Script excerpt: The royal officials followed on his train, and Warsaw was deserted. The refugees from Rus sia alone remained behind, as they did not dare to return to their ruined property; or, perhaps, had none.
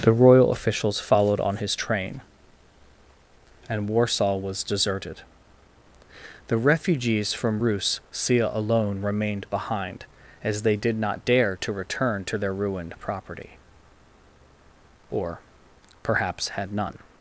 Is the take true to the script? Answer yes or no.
yes